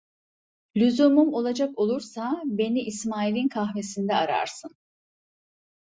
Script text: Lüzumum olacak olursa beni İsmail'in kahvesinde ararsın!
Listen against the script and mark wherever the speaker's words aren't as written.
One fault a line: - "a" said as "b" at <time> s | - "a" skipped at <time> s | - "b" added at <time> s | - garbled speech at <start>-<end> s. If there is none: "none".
none